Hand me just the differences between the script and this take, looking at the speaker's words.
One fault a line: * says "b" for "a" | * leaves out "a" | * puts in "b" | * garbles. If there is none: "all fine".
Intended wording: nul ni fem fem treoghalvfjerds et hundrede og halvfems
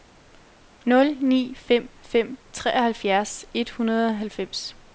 all fine